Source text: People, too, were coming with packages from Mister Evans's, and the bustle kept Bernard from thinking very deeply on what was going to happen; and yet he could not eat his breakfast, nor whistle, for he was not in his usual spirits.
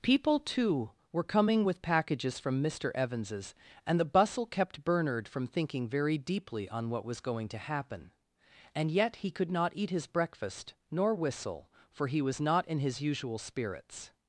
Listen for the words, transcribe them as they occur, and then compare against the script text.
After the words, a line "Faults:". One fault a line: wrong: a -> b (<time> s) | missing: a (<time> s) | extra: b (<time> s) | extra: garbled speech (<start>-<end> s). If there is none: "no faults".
People, too, were coming with packages from Mister Evans's, and the bustle kept Bernard from thinking very deeply on what was going to happen; and yet he could not eat his breakfast, nor whistle, for he was not in his usual spirits.
Faults:
no faults